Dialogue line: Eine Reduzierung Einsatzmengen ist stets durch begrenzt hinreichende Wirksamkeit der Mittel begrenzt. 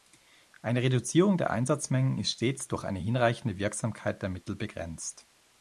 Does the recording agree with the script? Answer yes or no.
no